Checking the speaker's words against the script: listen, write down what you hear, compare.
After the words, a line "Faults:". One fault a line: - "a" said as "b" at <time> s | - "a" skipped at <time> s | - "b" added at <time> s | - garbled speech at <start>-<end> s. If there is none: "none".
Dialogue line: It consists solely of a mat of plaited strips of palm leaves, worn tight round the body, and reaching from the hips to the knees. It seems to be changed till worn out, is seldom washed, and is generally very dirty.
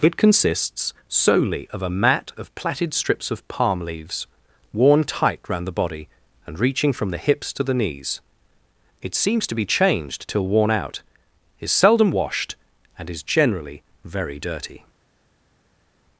It consists solely of a mat of plaited strips of palm leaves, worn tight round the body, and reaching from the hips to the knees. It seems to be changed till worn out, is seldom washed, and is generally very dirty.
Faults:
none